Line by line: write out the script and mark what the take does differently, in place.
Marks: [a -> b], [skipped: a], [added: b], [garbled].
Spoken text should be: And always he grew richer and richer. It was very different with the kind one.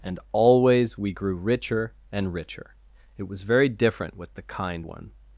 And always [he -> we] grew richer and richer. It was very different with the kind one.